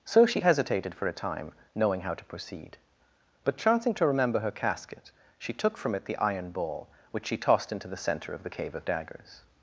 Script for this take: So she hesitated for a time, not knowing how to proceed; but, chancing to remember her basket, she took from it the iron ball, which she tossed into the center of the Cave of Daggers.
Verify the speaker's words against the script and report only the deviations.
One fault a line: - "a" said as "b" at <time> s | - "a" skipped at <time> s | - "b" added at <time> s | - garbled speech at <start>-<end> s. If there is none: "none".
- "not" skipped at 1.5 s
- "basket" said as "casket" at 4.5 s